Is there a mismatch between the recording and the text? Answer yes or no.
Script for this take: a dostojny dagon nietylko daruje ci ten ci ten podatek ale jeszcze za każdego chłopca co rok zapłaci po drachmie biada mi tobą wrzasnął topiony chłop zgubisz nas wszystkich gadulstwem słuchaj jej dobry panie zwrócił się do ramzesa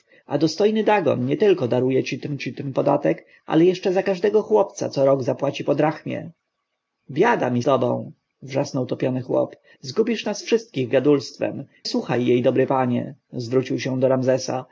no